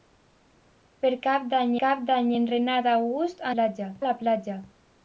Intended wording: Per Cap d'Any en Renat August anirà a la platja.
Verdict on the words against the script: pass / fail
fail